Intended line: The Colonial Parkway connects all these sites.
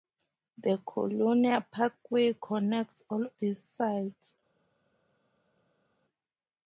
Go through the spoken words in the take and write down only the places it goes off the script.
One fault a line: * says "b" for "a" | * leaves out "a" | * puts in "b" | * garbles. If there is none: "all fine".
all fine